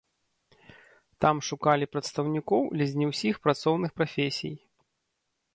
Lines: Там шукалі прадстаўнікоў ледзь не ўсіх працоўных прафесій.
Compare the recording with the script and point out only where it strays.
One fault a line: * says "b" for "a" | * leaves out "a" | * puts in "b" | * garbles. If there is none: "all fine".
all fine